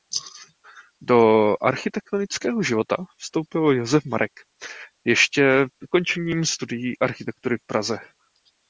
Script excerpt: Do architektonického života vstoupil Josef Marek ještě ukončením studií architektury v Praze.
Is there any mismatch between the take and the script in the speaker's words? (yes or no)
no